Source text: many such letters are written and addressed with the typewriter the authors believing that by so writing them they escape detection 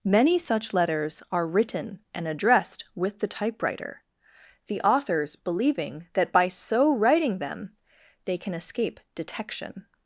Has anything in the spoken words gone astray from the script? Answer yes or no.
yes